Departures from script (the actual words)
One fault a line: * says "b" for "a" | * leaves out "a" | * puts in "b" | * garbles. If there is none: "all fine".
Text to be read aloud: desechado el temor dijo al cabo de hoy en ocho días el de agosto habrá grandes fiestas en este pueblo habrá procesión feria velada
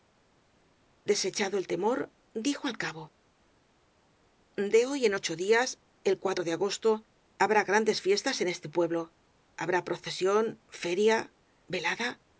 all fine